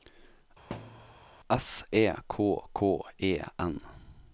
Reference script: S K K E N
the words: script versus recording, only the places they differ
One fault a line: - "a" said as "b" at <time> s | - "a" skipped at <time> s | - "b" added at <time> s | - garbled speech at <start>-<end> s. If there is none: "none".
- "E" added at 1.9 s